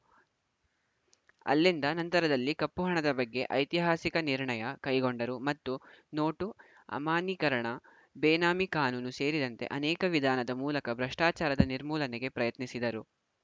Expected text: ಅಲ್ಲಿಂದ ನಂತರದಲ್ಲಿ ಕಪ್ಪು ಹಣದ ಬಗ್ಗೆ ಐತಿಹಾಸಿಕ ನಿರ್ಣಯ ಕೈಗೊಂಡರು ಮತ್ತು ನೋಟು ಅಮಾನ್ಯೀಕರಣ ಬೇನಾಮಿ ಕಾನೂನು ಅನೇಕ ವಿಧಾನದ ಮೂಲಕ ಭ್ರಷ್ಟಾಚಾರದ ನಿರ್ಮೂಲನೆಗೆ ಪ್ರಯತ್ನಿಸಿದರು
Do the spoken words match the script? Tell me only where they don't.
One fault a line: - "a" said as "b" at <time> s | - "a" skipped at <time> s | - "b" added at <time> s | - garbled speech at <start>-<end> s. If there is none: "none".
- "ಸೇರಿದಂತೆ" added at 9.2 s